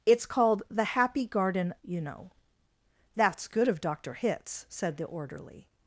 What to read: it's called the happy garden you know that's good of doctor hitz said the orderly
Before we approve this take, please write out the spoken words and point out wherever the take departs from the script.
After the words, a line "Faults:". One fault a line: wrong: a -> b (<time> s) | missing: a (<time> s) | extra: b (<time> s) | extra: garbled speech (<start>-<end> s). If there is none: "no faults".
it's called the happy garden you know that's good of doctor hitz said the orderly
Faults:
no faults